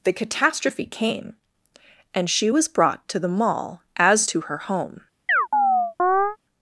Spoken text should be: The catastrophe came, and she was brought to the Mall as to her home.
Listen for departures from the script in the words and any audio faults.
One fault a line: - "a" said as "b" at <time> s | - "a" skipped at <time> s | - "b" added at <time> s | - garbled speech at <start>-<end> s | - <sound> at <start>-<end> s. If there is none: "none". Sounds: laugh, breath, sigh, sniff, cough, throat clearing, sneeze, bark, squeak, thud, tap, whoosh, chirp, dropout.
- chirp at 5.3-6.4 s